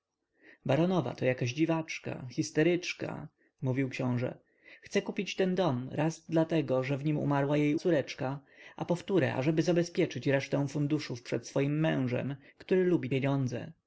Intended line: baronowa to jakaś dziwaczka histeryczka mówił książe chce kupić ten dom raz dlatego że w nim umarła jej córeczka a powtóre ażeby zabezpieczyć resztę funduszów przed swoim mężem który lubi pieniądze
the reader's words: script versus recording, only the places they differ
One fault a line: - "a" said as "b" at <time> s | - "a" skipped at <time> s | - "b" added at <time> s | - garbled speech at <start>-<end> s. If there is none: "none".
none